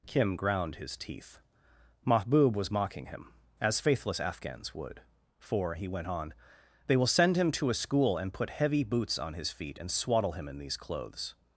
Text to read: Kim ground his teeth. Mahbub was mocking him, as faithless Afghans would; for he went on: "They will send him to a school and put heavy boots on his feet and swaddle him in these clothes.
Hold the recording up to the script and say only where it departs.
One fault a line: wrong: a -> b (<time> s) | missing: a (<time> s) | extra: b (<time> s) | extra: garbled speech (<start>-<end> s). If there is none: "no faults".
no faults